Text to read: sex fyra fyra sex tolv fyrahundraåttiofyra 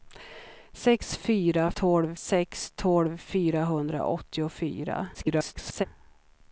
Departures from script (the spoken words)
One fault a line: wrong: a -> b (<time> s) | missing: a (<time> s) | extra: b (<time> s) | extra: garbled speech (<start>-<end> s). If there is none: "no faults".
wrong: fyra -> tolv (1.7 s)
extra: garbled speech (5.1-5.9 s)